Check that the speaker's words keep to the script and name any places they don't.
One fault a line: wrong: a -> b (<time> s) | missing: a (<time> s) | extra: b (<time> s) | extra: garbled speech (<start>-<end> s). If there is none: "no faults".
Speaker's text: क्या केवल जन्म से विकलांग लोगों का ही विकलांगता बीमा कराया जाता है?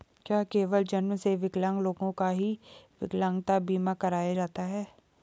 no faults